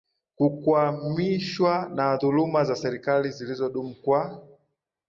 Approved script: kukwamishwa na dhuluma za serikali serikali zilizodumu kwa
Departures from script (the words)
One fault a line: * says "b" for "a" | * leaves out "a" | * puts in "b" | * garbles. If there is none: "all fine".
* leaves out "serikali"